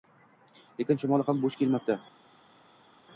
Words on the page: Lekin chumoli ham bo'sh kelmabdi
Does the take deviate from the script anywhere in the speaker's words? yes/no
no